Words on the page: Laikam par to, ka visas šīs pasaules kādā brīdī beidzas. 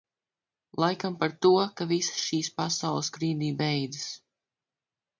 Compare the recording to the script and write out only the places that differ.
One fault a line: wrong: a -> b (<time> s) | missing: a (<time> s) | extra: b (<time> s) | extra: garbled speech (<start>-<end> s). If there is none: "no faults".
missing: kādā (3.1 s)